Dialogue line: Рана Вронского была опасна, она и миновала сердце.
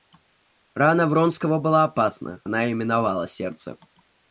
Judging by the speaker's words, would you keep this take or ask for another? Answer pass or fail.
pass